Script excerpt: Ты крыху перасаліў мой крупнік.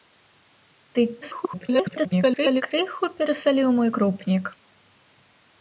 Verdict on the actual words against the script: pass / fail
fail